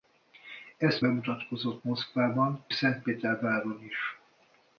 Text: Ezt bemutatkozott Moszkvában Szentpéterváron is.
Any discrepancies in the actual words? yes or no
no